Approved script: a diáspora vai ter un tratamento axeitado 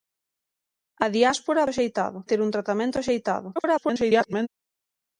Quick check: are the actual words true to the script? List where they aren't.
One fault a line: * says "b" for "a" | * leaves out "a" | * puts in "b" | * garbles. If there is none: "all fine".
* says "axeitado" for "vai"
* garbles